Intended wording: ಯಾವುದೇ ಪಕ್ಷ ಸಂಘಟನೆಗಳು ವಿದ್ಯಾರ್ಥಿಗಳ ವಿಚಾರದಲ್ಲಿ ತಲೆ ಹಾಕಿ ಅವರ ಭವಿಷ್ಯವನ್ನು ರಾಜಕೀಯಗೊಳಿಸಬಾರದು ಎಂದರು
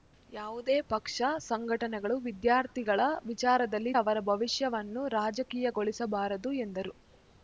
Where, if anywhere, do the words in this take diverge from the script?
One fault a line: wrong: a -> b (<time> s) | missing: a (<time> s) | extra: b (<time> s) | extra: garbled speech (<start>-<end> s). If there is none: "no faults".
missing: ತಲೆ ಹಾಕಿ (3.9 s)